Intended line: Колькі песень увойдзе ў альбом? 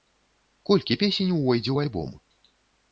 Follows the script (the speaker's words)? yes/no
yes